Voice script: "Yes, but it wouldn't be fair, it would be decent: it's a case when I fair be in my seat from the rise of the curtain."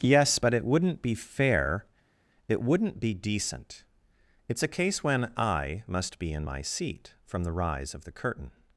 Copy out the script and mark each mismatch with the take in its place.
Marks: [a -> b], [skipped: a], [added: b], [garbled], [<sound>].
"Yes, but it wouldn't be fair, it [would -> wouldn't] be decent: it's a case when I [fair -> must] be in my seat from the rise of the curtain."